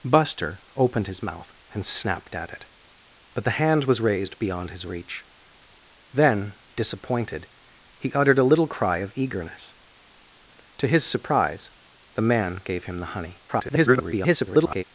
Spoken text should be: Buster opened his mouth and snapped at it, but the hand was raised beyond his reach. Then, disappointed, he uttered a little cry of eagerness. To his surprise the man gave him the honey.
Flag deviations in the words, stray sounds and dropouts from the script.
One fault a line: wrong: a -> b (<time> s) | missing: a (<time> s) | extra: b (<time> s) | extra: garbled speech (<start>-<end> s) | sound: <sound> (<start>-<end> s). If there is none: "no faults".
extra: garbled speech (13.5-14.8 s)